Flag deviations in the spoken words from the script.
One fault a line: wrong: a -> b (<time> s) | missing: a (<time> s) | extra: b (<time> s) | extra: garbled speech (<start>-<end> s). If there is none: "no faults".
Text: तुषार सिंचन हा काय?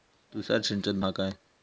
no faults